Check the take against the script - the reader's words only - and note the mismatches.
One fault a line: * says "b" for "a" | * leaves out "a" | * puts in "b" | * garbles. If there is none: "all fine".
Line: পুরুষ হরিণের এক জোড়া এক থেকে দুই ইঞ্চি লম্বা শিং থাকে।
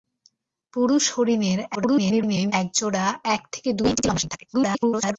* garbles
* puts in "ইঞ্চি"
* garbles